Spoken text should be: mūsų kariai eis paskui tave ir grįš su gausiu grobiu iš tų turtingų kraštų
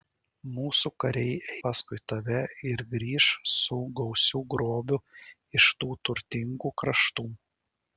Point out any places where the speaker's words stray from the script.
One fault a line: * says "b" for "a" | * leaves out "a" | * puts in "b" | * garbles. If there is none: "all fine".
* leaves out "eis"